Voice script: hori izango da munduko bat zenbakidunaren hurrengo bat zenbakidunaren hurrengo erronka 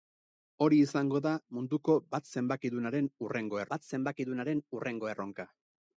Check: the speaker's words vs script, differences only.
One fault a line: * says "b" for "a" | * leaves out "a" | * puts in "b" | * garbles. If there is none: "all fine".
all fine